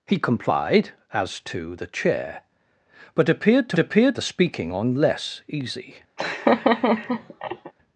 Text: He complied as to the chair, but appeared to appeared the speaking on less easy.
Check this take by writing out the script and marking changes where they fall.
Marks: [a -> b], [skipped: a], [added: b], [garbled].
He complied as to the chair, but appeared to appeared the speaking on less easy.